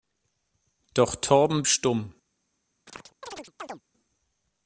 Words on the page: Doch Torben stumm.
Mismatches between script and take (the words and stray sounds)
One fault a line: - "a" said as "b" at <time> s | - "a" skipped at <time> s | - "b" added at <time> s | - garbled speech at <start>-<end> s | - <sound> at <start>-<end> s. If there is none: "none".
- chirp at 2.9-3.8 s